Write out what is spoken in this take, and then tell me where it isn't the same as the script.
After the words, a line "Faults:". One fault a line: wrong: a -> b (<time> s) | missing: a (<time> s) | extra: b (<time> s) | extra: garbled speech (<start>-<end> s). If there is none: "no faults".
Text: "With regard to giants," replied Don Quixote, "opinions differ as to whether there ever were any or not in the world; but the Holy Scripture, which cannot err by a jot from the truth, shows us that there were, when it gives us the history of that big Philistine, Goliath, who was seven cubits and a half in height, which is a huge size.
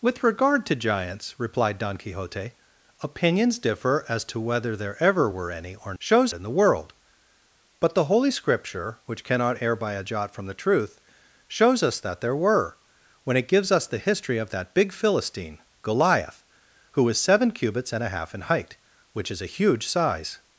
"With regard to giants," replied Don Quixote, "opinions differ as to whether there ever were any or shows in the world; but the Holy Scripture, which cannot err by a jot from the truth, shows us that there were, when it gives us the history of that big Philistine, Goliath, who was seven cubits and a half in height, which is a huge size.
Faults:
wrong: not -> shows (6.0 s)